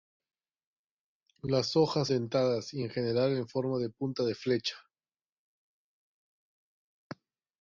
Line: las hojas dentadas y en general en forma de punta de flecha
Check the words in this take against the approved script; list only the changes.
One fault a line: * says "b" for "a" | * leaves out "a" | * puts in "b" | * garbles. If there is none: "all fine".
all fine